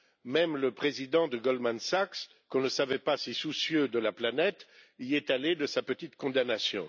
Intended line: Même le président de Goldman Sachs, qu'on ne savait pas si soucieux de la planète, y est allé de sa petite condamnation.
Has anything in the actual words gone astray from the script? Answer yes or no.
no